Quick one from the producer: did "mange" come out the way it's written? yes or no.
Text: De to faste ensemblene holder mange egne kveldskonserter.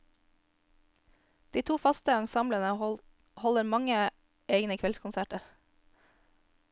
yes